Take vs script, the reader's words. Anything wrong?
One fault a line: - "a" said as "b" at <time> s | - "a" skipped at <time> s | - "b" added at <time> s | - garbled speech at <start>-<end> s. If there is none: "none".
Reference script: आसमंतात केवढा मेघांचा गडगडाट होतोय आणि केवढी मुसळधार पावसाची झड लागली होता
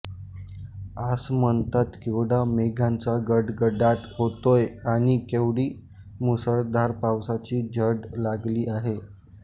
- "होता" said as "आहे" at 8.7 s